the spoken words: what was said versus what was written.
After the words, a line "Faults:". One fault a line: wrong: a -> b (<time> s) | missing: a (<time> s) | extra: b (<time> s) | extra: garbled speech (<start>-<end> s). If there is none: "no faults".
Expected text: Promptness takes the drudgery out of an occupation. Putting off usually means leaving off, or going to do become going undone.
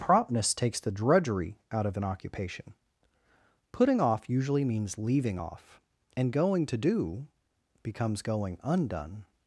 Promptness takes the drudgery out of an occupation. Putting off usually means leaving off, and going to do becomes going undone.
Faults:
wrong: or -> and (6.2 s)
wrong: become -> becomes (7.8 s)